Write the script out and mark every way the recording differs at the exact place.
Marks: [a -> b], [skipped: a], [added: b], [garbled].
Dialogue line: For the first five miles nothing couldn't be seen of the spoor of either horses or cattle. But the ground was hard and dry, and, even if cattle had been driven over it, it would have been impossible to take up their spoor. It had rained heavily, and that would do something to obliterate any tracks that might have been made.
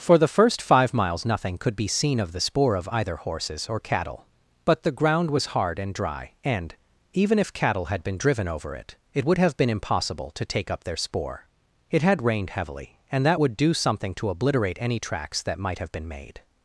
For the first five miles nothing [couldn't -> could] be seen of the spoor of either horses or cattle. But the ground was hard and dry, and, even if cattle had been driven over it, it would have been impossible to take up their spoor. It had rained heavily, and that would do something to obliterate any tracks that might have been made.